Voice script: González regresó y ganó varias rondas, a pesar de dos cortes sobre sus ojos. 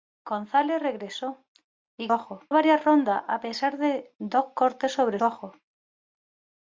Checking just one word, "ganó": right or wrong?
wrong